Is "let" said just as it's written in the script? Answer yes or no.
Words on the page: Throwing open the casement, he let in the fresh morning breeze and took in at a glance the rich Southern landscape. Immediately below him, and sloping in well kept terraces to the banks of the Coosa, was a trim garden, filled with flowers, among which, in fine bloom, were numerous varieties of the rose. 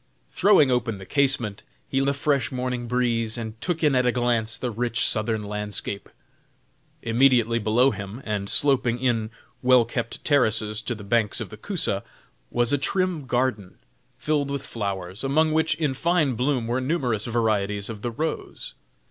no